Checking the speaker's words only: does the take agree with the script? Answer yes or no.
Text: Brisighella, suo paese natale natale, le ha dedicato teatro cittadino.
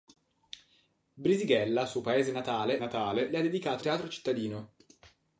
yes